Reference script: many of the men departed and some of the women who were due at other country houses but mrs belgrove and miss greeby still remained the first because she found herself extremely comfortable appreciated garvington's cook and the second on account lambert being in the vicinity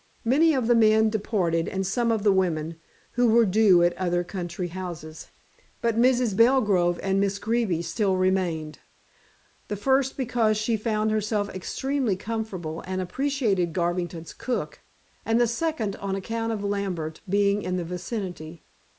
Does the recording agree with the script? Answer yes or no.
no